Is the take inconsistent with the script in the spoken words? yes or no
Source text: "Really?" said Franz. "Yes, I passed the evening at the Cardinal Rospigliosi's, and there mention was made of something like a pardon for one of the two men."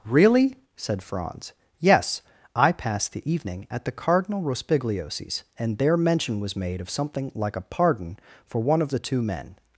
no